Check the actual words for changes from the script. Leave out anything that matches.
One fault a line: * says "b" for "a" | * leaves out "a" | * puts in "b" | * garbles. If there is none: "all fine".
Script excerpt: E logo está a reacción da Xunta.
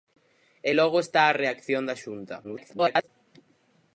* garbles